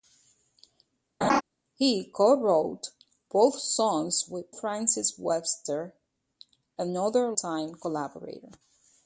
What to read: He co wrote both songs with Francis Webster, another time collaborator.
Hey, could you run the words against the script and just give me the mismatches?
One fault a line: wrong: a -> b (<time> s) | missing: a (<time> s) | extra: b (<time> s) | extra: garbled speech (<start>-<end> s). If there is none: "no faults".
no faults